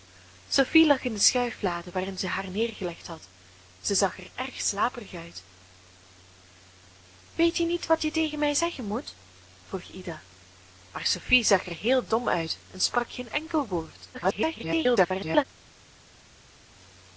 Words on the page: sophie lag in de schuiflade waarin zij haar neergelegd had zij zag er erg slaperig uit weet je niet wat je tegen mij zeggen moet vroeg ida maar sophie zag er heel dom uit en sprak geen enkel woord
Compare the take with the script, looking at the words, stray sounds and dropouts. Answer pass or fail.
fail